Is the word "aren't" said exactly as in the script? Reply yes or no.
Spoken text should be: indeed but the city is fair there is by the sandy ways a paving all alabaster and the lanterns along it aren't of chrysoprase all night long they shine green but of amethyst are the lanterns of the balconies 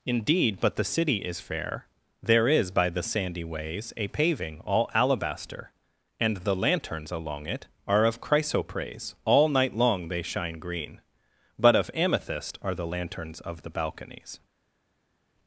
no